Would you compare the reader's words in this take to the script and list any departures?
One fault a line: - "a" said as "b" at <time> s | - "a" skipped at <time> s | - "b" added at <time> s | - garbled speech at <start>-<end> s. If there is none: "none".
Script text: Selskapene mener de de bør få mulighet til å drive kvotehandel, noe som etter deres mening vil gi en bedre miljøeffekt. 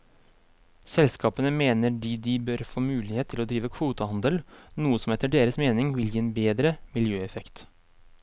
none